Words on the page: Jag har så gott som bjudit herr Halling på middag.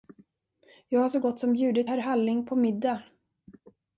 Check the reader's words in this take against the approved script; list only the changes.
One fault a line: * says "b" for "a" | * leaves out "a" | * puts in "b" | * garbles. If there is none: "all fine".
all fine